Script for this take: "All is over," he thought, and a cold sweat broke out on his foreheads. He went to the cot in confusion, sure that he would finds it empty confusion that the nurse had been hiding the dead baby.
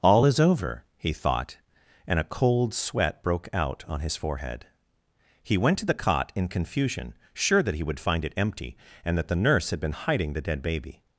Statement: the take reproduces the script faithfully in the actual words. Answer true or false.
false